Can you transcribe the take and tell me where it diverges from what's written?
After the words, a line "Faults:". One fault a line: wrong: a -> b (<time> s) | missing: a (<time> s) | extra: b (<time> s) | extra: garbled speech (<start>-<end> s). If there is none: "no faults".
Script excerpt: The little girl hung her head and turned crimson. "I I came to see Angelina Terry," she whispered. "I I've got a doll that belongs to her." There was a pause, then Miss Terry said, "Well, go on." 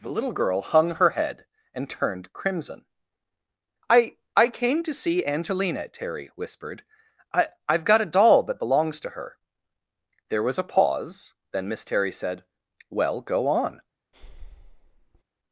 The little girl hung her head and turned crimson. "I I came to see Angelina Terry," whispered. "I I've got a doll that belongs to her." There was a pause, then Miss Terry said, "Well, go on."
Faults:
missing: she (6.3 s)